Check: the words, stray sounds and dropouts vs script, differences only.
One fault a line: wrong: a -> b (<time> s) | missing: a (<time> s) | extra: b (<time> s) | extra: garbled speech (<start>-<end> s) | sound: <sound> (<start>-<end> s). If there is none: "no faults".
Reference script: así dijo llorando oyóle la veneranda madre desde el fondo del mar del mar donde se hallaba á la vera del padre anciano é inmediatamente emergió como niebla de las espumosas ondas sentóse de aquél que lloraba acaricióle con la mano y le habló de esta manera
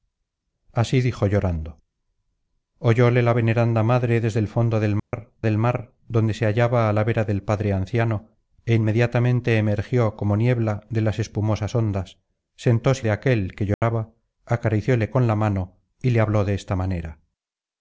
sound: dropout (5.0-5.1 s)
sound: dropout (13.7-13.8 s)